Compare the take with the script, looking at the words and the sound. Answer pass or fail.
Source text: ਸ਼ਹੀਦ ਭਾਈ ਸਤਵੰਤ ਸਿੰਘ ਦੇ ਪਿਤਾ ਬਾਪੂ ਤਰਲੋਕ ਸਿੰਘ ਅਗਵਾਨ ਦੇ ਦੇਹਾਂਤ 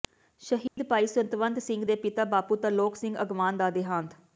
fail